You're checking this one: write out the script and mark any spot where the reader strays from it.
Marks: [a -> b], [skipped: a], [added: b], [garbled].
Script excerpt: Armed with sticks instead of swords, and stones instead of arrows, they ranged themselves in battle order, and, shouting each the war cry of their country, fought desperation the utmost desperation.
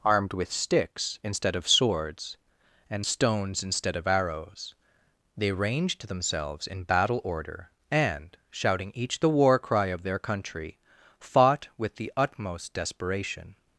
Armed with sticks instead of swords, and stones instead of arrows, they ranged themselves in battle order, and, shouting each the war cry of their country, fought [desperation -> with] the utmost desperation.